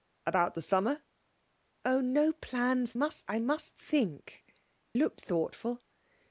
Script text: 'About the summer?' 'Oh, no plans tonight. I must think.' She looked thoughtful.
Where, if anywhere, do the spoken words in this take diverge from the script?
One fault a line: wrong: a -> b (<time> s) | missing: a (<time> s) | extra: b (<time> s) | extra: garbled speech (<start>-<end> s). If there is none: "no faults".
wrong: tonight -> must (2.9 s)
missing: She (4.4 s)